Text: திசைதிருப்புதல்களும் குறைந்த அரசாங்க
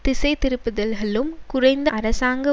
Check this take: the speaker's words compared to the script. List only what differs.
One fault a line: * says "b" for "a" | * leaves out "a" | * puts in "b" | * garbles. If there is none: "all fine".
all fine